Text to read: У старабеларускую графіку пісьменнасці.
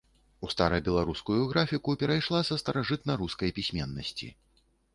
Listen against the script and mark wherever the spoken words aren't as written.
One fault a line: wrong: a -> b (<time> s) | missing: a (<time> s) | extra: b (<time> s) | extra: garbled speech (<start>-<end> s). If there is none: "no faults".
extra: перайшла са старажытнарускай (2.0 s)